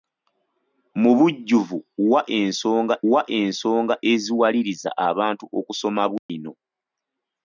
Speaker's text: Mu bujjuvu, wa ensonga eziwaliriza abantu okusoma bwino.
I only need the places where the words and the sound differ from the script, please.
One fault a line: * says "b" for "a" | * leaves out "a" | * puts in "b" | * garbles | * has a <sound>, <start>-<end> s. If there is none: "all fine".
* puts in "wa ensonga"
* has a dropout, 6.2-6.3 s